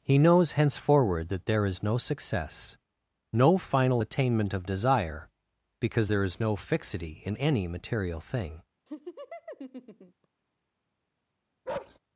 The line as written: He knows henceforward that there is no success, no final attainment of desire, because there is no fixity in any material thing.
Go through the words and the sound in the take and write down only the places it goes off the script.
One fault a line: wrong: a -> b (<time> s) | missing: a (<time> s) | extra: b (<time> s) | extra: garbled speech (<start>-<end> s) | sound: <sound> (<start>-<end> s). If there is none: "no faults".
sound: laugh (8.9-10.3 s)
sound: bark (11.7-12.0 s)